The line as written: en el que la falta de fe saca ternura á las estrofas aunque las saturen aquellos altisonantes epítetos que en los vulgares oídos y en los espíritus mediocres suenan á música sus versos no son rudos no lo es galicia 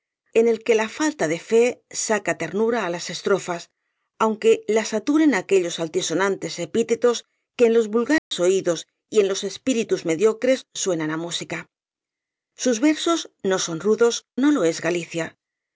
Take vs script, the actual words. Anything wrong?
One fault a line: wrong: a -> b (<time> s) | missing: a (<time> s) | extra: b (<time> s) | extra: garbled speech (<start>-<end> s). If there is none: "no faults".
no faults